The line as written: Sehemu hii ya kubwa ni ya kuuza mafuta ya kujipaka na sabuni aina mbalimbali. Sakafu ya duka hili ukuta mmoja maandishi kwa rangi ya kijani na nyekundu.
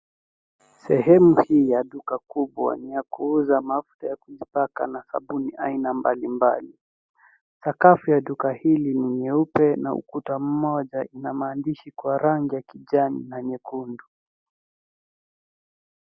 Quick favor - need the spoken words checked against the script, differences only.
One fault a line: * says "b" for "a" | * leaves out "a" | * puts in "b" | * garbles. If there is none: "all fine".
* puts in "duka"
* puts in "ni nyeupe na"
* puts in "ina"